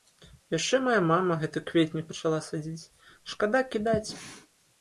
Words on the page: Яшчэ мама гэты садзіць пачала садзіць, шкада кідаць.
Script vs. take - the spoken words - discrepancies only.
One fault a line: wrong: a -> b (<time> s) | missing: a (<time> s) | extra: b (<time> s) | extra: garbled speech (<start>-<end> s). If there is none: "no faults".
extra: мая (0.8 s)
wrong: садзіць -> кветнік (1.7 s)